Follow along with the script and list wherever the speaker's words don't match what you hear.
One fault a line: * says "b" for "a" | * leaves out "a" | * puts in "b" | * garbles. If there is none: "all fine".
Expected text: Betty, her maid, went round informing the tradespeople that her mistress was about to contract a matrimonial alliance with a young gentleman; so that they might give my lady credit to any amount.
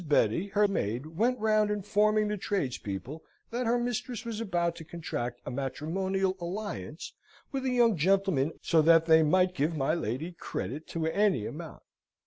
all fine